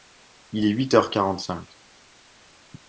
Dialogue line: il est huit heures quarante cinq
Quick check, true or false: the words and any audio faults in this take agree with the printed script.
true